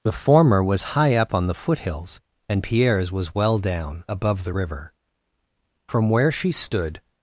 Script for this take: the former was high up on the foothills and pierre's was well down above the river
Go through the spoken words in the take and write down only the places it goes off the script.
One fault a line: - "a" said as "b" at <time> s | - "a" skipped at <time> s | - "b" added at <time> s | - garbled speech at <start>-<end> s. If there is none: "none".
- "from where she stood" added at 5.9 s